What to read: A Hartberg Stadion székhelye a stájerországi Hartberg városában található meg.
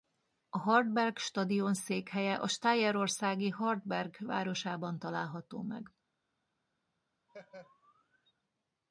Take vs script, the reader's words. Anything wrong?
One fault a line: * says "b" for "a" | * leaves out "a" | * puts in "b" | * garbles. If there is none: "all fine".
all fine